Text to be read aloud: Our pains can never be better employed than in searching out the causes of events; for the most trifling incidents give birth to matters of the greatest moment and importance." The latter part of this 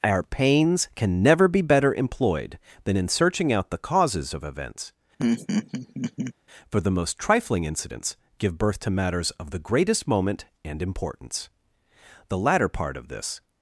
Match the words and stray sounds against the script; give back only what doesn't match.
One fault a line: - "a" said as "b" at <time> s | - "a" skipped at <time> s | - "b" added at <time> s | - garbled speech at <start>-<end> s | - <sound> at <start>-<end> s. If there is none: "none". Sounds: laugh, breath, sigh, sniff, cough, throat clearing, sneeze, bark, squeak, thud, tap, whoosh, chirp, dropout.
- laugh at 5.2-6.3 s